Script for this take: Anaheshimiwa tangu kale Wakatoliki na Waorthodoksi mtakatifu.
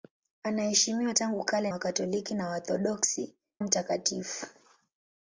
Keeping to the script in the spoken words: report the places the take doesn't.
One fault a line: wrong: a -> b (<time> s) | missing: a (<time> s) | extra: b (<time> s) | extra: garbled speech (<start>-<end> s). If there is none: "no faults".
no faults